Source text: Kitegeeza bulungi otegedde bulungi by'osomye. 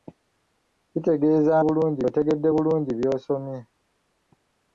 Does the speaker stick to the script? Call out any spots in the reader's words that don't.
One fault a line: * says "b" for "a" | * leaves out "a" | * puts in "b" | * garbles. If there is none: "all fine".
all fine